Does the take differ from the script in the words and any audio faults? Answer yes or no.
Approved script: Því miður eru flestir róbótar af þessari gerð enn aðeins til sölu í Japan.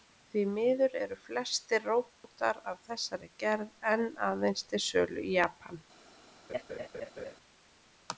yes